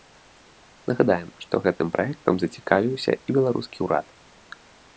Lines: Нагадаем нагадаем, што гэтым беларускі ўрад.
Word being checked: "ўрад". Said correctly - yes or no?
yes